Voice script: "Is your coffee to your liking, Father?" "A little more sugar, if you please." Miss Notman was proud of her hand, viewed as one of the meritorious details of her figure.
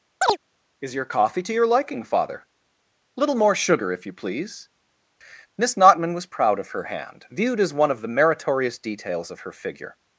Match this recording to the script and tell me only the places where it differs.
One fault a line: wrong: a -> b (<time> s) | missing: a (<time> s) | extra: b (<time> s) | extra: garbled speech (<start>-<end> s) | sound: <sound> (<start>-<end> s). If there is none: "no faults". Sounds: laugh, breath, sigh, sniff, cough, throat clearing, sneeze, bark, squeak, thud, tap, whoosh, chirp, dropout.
sound: chirp (0.2-0.4 s)
missing: A (2.5 s)